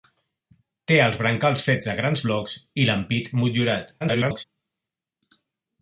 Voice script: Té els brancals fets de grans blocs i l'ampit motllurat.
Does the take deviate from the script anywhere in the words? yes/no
yes